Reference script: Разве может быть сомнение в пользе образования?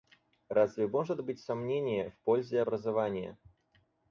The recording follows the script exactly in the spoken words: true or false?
true